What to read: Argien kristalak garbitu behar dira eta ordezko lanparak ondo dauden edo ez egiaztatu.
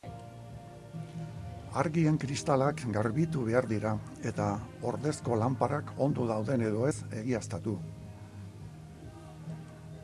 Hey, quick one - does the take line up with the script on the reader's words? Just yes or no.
yes